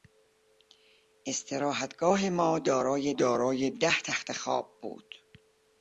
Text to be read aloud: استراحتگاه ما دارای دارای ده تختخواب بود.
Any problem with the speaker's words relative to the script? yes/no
no